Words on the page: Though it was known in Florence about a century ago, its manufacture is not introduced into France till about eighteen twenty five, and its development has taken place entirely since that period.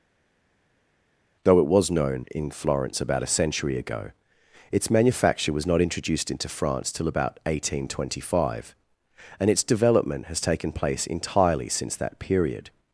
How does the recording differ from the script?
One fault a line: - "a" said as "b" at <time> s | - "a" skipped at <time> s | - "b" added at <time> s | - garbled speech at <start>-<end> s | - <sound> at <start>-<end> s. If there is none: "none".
- "is" said as "was" at 5.5 s